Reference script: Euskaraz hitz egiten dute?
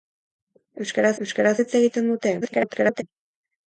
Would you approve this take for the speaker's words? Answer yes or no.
no